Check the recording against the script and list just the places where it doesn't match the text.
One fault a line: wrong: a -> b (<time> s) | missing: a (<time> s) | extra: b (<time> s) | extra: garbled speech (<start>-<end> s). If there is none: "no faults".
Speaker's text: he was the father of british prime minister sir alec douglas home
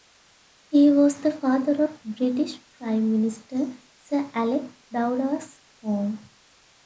no faults